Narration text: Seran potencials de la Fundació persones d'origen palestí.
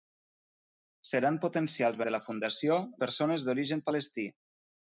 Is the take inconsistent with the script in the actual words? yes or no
no